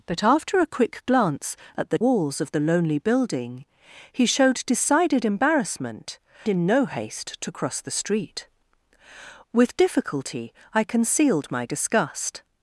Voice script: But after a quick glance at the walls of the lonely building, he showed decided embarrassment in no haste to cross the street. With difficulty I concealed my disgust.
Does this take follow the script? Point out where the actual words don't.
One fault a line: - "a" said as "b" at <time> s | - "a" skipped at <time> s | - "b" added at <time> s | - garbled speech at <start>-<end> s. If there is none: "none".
none